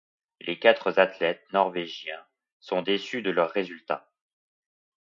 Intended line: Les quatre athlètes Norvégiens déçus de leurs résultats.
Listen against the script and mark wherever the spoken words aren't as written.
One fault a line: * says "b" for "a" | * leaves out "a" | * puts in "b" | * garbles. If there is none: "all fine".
* puts in "sont"